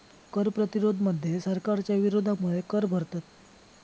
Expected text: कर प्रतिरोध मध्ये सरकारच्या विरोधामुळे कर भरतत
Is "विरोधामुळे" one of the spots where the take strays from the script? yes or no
no